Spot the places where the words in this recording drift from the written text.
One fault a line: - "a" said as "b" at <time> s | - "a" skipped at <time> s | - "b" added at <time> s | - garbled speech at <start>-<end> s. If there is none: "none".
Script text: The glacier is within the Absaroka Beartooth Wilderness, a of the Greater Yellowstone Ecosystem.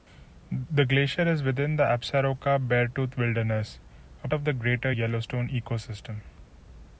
none